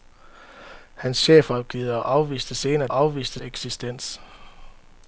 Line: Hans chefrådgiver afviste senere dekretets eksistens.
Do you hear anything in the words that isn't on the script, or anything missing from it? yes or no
yes